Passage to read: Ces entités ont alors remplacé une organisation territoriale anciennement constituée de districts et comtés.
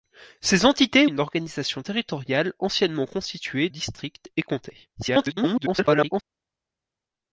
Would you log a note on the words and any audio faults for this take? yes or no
yes